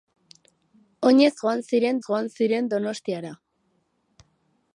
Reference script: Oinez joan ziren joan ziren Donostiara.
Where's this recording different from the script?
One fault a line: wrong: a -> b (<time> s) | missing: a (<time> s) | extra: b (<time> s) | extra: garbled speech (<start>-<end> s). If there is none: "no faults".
no faults